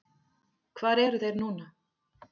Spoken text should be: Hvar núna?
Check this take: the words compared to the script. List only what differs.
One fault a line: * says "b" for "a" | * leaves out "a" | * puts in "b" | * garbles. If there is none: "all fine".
* puts in "eru þeir"